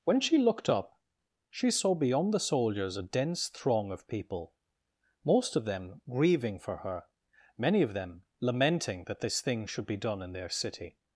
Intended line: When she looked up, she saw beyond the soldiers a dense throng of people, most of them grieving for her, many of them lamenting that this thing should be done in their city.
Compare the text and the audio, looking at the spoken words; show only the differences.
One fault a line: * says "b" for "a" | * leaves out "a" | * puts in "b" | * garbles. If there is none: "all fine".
all fine